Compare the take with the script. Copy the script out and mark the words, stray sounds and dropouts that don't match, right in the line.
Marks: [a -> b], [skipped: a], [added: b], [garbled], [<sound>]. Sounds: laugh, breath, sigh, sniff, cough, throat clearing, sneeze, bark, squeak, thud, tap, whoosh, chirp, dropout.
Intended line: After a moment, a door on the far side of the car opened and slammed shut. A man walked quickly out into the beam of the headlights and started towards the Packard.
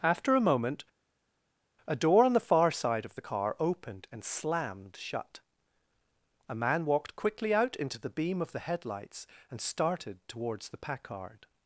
After a moment, a door on the far side of the car opened and slammed shut. A man walked quickly out into the beam of the headlights and started towards the Packard.